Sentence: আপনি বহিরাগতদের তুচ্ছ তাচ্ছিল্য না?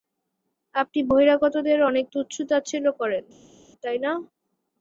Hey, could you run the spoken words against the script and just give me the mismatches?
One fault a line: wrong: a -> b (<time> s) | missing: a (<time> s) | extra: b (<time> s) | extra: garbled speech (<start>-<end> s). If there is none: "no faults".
extra: অনেক (1.9 s)
extra: করেন তাই (3.0 s)